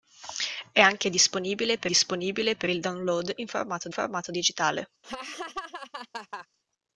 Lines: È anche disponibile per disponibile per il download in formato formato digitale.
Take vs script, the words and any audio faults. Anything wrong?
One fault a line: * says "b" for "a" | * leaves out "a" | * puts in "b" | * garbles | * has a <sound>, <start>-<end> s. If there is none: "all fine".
* has a laugh, 5.0-6.5 s